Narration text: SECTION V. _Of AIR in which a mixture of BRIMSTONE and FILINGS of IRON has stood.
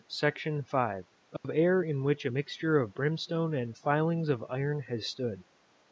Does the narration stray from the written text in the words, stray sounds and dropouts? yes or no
yes